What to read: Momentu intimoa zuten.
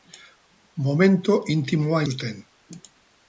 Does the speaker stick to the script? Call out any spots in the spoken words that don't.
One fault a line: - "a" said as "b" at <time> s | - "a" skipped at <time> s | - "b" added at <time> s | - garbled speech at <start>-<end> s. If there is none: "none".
none